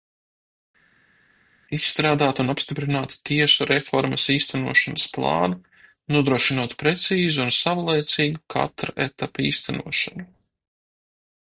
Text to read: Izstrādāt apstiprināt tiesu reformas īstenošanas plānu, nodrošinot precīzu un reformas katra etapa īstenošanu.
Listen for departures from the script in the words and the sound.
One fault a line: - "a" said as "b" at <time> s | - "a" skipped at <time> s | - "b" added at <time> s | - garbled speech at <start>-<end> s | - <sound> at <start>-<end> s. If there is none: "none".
- "un" added at 2.4 s
- "reformas" said as "savlaicīgu" at 7.6 s